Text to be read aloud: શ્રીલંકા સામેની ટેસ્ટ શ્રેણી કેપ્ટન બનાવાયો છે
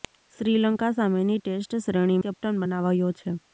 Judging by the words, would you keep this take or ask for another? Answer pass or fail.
pass